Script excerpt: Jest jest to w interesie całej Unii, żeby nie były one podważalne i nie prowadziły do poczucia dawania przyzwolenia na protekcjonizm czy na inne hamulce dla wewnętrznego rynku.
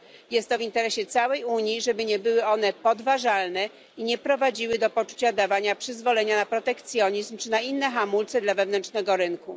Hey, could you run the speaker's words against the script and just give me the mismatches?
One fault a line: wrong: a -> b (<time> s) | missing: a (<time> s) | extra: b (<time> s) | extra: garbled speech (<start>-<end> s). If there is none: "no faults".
missing: jest (0.5 s)